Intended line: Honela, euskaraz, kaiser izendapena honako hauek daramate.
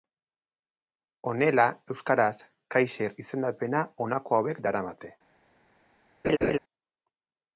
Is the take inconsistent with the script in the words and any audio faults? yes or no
yes